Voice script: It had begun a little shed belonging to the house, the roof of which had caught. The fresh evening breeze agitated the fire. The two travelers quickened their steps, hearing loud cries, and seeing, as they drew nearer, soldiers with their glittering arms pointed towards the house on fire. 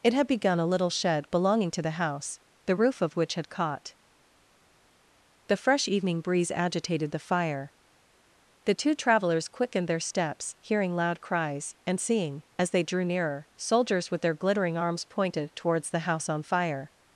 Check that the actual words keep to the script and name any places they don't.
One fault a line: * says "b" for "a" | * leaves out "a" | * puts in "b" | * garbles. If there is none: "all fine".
all fine